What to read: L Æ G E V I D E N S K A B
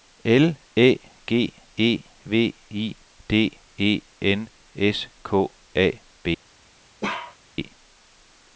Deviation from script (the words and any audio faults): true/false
true